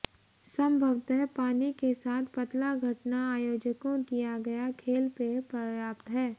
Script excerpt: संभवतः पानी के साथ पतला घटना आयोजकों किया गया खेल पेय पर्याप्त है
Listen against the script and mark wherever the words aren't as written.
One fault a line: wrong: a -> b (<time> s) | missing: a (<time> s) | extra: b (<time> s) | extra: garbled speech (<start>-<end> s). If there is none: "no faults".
no faults